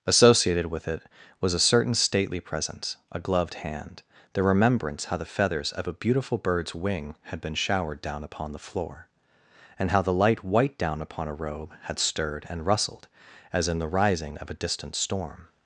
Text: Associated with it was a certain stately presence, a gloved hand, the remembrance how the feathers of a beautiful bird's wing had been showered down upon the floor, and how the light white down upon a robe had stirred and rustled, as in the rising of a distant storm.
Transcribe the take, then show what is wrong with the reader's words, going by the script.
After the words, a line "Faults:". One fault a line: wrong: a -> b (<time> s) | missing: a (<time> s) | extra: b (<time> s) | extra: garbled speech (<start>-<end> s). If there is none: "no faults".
Associated with it was a certain stately presence, a gloved hand, the remembrance how the feathers of a beautiful bird's wing had been showered down upon the floor, and how the light white down upon a robe had stirred and rustled, as in the rising of a distant storm.
Faults:
no faults